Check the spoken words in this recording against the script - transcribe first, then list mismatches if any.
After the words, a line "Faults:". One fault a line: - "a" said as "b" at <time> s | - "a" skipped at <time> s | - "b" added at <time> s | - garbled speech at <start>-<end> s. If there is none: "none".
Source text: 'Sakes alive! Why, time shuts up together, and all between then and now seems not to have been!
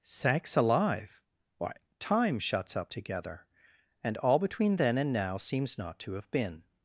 'Sakes alive! Why, time shuts up together, and all between then and now seems not to have been!
Faults:
none